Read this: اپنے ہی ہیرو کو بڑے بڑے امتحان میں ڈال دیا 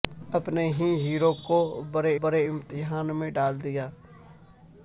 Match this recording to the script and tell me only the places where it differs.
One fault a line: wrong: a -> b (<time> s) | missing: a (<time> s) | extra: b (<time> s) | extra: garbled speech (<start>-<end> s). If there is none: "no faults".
no faults